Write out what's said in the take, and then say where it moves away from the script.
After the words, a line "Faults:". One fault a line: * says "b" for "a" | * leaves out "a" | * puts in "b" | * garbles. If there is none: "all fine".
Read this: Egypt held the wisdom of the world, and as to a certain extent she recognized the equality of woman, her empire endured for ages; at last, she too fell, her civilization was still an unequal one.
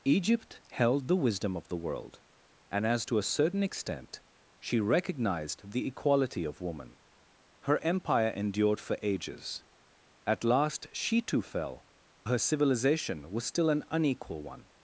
Egypt held the wisdom of the world, and as to a certain extent she recognized the equality of woman, her empire endured for ages; at last, she too fell, her civilization was still an unequal one.
Faults:
all fine